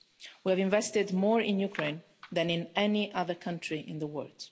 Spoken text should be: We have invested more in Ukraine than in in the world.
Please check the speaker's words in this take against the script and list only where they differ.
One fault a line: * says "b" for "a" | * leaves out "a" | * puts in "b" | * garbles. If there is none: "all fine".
* puts in "any other country"